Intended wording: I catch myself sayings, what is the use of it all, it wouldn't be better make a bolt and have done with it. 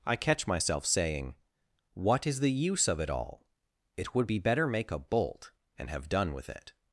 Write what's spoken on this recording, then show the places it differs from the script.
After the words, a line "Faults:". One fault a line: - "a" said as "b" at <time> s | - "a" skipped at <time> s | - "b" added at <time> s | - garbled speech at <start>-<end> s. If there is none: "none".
I catch myself saying, what is the use of it all, it would be better make a bolt and have done with it.
Faults:
- "sayings" said as "saying" at 0.8 s
- "wouldn't" said as "would" at 4.2 s